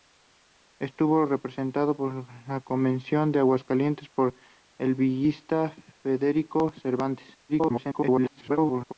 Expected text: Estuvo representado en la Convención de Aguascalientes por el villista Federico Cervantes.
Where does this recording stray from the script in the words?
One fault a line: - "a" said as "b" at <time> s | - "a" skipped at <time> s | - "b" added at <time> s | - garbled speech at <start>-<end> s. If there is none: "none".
- garbled speech at 7.5-8.9 s